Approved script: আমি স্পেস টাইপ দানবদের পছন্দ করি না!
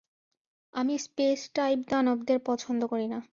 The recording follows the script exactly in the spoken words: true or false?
true